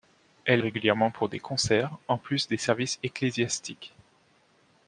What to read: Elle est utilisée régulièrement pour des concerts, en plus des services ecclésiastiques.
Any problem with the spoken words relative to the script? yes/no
yes